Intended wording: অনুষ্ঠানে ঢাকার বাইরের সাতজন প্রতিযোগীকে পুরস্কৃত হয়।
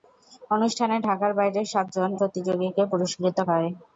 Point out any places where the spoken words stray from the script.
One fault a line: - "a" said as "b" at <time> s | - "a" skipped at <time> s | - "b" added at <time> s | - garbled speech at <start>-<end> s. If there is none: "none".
none